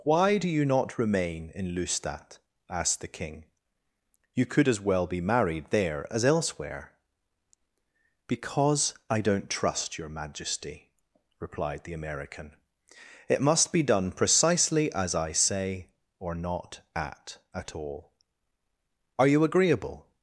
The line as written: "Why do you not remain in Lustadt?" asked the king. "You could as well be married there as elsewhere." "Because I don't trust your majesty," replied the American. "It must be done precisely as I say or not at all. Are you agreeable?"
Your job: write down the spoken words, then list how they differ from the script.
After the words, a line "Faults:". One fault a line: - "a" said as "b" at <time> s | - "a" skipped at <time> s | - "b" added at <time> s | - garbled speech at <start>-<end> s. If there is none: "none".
"Why do you not remain in Lustadt?" asked the king. "You could as well be married there as elsewhere." "Because I don't trust your majesty," replied the American. "It must be done precisely as I say or not at at all. Are you agreeable?"
Faults:
- "at" added at 17.5 s